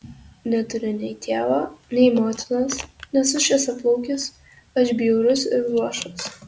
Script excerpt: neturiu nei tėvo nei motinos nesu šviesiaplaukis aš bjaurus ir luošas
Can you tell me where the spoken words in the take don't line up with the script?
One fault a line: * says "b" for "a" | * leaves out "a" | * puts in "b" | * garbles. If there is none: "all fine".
all fine